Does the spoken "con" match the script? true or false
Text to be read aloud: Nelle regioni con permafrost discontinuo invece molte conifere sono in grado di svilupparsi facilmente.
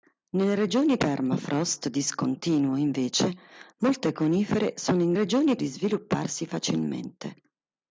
false